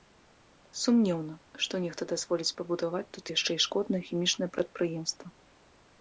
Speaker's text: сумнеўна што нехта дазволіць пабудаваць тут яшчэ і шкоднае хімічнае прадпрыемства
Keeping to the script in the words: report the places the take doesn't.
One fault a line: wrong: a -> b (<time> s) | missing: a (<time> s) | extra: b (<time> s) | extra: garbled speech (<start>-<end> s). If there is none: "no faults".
no faults